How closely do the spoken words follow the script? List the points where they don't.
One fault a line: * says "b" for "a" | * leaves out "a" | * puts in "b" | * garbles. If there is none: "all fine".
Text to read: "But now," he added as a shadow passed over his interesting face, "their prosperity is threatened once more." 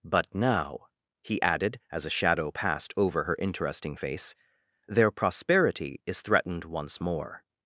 * says "her" for "his"